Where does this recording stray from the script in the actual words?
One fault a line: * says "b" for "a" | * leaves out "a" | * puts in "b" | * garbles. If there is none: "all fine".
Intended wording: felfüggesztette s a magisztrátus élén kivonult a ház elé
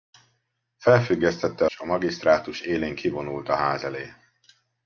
all fine